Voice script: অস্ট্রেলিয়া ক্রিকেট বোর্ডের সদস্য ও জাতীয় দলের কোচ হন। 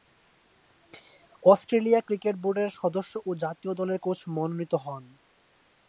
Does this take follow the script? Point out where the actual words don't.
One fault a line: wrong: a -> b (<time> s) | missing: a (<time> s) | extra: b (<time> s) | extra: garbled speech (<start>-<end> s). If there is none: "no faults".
extra: মনোনীত (4.3 s)